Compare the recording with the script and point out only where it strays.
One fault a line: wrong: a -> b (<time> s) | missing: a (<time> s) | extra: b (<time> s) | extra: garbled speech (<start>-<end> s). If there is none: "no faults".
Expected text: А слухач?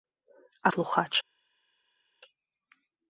no faults